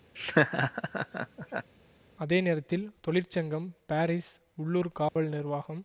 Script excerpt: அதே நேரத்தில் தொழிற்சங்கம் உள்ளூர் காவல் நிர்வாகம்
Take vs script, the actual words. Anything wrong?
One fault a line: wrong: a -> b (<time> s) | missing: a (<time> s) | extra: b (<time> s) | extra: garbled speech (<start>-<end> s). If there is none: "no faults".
extra: பாரிஸ் (3.9 s)